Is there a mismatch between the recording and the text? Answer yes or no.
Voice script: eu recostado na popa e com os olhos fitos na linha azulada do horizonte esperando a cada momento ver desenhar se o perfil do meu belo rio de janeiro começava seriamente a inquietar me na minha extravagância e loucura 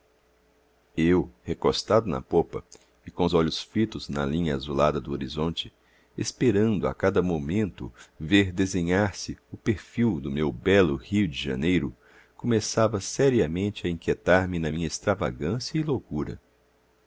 no